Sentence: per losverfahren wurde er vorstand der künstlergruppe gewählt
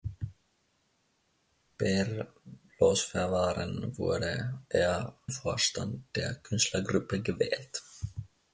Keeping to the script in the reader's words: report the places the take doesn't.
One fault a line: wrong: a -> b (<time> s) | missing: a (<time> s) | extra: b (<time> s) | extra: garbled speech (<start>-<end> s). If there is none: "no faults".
no faults